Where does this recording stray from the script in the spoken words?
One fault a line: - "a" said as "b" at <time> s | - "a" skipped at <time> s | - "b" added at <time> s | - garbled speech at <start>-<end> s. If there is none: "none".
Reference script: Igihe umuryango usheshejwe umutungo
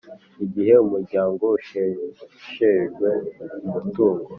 none